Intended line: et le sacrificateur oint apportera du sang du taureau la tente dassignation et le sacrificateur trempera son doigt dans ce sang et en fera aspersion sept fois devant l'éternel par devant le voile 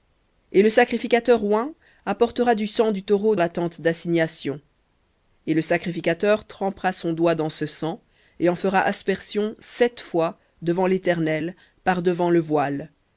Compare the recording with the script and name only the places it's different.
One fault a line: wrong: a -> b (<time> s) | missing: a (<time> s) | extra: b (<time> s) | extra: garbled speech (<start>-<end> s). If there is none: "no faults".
no faults